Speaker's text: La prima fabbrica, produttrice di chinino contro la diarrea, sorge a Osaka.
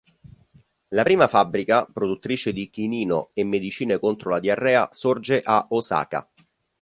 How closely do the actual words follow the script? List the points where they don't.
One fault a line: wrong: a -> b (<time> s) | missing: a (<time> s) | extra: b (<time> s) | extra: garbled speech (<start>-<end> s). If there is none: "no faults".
extra: e medicine (3.3 s)